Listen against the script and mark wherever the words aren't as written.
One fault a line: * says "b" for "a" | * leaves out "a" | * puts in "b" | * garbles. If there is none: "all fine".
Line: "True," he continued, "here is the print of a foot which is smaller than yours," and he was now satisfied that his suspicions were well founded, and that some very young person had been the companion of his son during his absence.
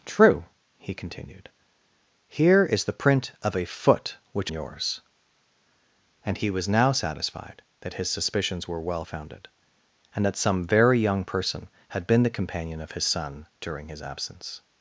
* leaves out "is smaller than"